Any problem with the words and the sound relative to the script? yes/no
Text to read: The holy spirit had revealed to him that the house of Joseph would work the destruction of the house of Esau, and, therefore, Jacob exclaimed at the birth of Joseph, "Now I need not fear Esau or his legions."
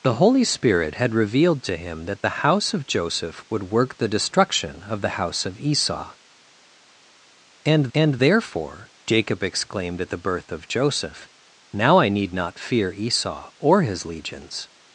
yes